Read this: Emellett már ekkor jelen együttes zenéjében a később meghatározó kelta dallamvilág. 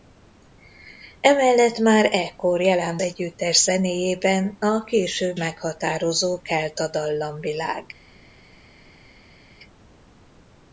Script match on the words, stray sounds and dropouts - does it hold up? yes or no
yes